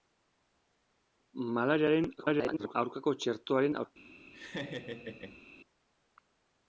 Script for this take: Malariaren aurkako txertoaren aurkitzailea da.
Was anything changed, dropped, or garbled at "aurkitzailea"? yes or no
yes